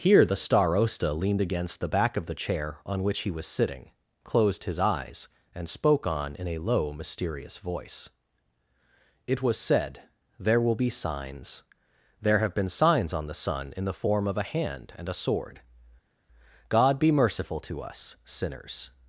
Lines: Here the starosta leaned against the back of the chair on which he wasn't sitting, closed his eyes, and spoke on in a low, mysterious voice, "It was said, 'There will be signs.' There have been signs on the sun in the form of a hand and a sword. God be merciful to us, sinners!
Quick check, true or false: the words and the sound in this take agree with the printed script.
false